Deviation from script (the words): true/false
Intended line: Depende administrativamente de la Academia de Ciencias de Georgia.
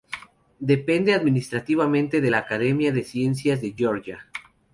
false